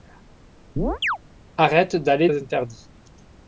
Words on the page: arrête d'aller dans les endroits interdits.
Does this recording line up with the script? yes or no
no